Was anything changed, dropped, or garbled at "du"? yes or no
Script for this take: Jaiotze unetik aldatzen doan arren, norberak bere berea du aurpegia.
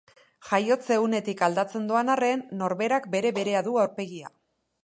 no